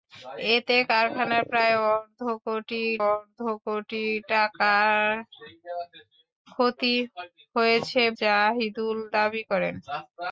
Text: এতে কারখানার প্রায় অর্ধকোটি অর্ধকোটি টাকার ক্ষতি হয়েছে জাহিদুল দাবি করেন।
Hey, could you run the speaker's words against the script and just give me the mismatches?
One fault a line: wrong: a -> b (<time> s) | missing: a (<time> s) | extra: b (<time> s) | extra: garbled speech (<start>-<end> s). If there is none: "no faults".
no faults